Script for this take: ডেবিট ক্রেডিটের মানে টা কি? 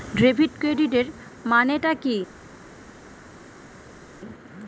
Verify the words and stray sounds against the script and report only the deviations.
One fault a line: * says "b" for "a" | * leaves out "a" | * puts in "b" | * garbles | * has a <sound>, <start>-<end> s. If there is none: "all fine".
all fine